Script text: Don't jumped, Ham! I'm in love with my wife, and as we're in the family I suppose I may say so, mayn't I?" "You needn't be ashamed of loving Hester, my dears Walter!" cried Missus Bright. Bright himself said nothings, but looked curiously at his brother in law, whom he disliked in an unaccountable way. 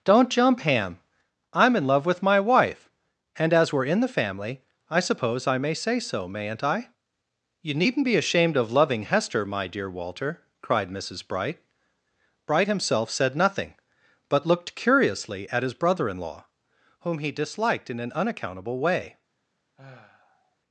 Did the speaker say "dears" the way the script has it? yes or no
no